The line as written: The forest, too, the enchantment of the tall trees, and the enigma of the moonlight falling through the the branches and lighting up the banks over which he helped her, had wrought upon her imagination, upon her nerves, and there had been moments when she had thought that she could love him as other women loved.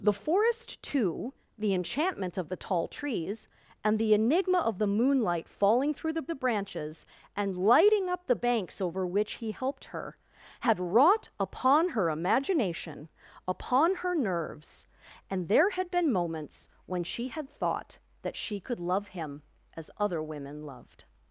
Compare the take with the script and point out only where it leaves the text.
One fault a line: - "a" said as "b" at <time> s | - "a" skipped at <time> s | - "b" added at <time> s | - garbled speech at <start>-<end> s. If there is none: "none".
none